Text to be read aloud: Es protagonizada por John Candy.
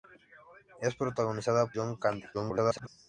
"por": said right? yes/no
no